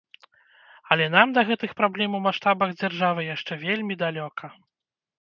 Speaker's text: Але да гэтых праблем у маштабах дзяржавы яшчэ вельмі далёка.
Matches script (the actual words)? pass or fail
fail